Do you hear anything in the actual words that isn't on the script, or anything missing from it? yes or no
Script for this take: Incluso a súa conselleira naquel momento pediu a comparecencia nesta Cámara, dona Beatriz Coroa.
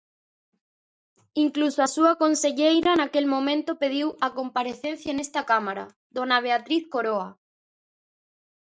no